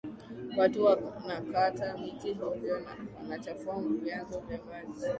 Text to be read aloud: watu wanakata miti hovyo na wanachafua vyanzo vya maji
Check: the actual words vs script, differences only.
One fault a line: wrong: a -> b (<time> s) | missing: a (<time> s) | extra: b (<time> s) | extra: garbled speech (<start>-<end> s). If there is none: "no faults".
no faults